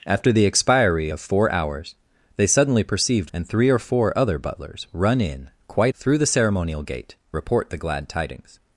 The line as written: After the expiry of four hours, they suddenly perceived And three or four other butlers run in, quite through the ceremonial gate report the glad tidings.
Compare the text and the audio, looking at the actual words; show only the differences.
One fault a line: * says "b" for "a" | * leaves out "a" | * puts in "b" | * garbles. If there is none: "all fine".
all fine